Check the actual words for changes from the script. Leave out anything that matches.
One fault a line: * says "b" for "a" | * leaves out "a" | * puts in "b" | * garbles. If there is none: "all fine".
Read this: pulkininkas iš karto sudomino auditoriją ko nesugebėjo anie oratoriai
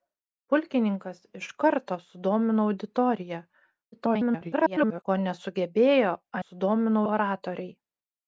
* garbles
* says "sudomino" for "anie"